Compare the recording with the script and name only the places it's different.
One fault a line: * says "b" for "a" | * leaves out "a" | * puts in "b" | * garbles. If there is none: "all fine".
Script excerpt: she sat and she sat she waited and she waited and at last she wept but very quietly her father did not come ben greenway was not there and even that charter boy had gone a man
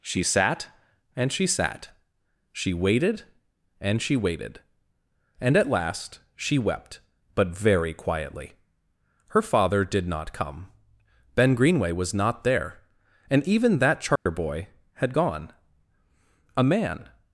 all fine